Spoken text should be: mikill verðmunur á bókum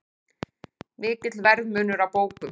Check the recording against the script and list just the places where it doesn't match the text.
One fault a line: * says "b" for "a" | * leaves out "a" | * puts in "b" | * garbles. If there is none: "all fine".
all fine